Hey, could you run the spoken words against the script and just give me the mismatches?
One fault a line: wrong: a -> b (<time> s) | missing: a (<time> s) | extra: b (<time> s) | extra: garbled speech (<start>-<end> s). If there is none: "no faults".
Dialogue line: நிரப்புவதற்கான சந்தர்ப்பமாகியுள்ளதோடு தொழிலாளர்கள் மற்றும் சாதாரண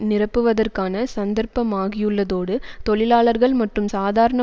no faults